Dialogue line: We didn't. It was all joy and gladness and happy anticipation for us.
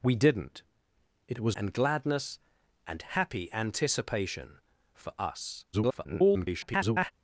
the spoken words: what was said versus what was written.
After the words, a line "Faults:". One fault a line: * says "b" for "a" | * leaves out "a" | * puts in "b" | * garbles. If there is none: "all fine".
We didn't. It was and gladness and happy anticipation for us. [garbled]
Faults:
* leaves out "all joy"
* garbles